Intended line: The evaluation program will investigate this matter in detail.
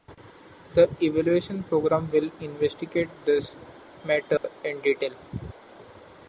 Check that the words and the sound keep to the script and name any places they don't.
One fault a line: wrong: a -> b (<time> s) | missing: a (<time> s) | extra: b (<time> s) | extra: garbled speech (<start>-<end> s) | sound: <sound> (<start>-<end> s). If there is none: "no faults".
sound: dropout (4.4-4.4 s)